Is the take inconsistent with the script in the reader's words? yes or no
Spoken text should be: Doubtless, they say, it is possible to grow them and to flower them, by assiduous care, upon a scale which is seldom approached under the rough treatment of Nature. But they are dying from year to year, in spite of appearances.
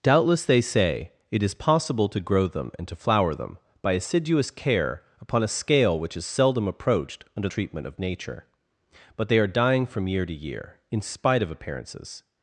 yes